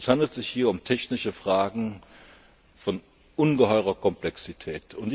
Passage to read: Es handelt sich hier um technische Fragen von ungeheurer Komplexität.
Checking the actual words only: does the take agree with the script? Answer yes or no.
yes